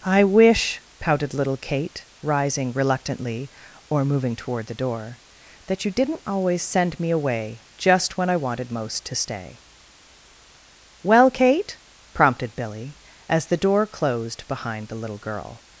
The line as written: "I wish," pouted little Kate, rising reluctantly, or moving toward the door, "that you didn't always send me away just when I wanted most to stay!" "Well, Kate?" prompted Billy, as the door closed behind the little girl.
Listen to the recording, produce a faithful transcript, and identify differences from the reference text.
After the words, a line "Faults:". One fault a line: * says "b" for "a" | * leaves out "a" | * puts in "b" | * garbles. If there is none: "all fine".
"I wish," pouted little Kate, rising reluctantly, or moving toward the door, "that you didn't always send me away just when I wanted most to stay!" "Well, Kate?" prompted Billy, as the door closed behind the little girl.
Faults:
all fine